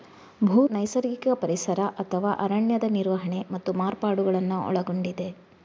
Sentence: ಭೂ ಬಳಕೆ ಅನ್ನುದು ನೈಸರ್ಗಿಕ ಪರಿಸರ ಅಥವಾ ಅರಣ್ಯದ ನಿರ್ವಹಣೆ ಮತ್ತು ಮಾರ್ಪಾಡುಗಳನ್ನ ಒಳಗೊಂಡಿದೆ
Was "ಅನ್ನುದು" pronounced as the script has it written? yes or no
no